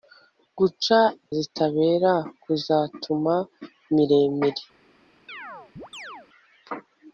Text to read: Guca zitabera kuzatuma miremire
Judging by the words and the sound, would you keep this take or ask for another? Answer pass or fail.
fail